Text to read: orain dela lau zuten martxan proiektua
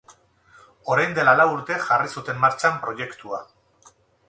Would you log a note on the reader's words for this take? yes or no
yes